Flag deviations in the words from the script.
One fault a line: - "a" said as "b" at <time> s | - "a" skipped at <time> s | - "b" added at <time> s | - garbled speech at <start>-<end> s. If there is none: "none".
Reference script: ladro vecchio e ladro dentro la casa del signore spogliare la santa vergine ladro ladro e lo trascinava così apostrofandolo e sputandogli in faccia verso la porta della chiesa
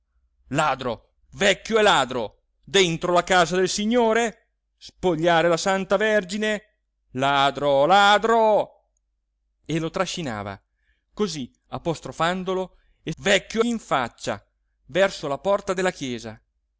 - "sputandogli" said as "vecchio" at 13.2 s